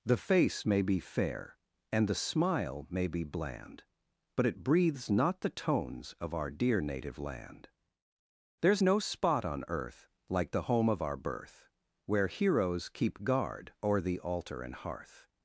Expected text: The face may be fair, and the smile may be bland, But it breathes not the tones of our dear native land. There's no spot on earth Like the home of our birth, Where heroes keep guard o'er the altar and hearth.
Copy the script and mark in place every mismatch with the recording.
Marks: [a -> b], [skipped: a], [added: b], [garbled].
The face may be fair, and the smile may be bland, But it breathes not the tones of our dear native land. There's no spot on earth Like the home of our birth, Where heroes keep guard o'er the altar and hearth.